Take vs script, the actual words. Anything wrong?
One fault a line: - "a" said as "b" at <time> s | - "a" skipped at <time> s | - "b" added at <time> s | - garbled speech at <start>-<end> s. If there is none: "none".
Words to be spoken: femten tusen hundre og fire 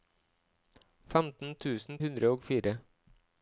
none